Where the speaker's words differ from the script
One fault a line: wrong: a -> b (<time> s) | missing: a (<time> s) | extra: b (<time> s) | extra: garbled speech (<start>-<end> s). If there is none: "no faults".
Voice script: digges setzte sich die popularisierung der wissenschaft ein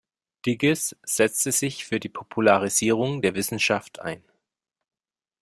extra: für (1.9 s)